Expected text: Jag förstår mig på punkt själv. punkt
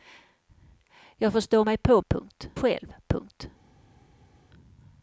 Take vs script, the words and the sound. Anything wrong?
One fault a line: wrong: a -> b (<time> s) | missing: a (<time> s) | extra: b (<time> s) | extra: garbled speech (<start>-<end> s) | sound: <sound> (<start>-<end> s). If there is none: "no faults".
no faults